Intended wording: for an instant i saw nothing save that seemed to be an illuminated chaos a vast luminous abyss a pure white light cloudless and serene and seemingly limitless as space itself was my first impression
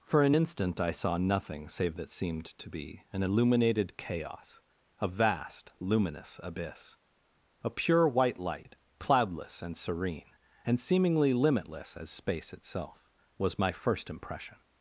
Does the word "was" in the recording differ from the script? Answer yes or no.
no